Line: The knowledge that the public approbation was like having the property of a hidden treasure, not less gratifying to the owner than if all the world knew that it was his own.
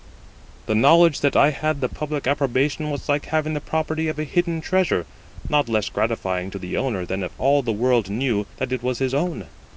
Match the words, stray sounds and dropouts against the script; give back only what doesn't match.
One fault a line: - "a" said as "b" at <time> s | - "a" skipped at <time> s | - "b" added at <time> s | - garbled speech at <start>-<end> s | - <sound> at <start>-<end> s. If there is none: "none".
- "I had" added at 1.4 s